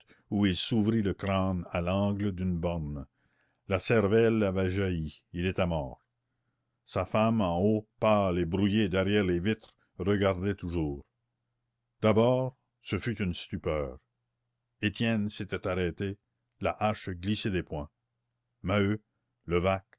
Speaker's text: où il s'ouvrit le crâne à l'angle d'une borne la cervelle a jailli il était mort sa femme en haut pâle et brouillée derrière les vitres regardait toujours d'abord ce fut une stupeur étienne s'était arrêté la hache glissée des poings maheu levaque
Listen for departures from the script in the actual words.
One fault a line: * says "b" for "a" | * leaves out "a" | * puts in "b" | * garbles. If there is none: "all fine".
* says "avait" for "a"